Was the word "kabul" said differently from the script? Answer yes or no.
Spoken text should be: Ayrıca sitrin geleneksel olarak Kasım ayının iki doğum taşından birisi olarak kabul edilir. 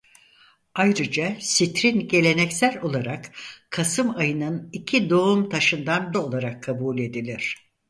no